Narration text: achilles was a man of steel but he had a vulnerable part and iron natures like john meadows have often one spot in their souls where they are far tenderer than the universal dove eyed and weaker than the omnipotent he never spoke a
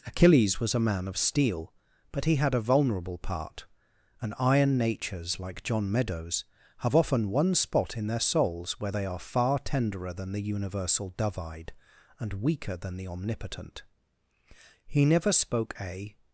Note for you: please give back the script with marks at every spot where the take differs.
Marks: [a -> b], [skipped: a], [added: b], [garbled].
achilles was a man of steel but he had a vulnerable part and iron natures like john meadows have often one spot in their souls where they are far tenderer than the universal dove eyed and weaker than the omnipotent he never spoke a